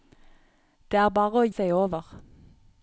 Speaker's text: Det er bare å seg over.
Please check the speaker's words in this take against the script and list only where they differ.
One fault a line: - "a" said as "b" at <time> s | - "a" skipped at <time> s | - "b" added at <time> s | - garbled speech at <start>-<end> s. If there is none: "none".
none